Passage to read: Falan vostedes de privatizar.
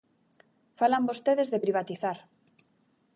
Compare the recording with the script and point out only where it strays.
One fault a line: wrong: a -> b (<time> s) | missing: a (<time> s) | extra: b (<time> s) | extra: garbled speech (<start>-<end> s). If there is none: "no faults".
no faults